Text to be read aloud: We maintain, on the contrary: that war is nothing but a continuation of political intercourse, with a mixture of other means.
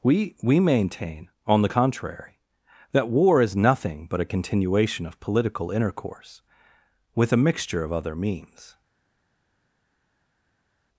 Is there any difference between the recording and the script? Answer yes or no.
yes